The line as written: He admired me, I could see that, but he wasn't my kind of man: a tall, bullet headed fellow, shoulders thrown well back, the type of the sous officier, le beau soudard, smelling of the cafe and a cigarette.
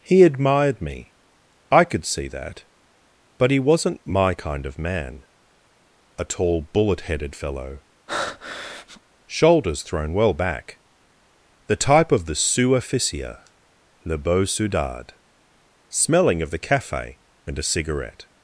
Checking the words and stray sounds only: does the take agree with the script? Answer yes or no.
no